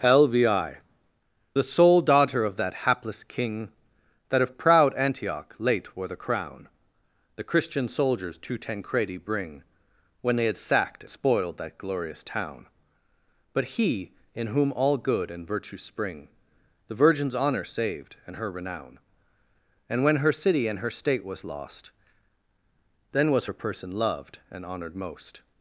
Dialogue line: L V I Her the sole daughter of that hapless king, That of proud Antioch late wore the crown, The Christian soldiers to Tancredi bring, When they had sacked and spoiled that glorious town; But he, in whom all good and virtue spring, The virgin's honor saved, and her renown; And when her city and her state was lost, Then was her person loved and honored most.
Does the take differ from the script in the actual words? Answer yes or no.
yes